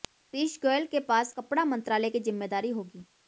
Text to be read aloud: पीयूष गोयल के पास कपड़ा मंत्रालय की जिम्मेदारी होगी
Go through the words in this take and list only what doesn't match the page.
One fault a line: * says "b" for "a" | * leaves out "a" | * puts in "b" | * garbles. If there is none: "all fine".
all fine